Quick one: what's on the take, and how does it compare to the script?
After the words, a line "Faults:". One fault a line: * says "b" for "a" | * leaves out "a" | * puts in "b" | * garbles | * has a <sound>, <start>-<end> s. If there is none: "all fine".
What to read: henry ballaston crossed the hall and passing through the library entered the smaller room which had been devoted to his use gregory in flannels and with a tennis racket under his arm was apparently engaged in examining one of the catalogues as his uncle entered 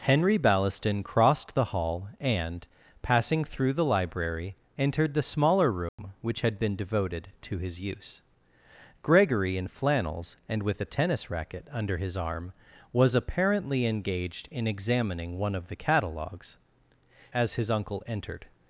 henry ballaston crossed the hall and passing through the library entered the smaller room which had been devoted to his use gregory in flannels and with a tennis racket under his arm was apparently engaged in examining one of the catalogues as his uncle entered
Faults:
* has a dropout, 5.9-6.0 s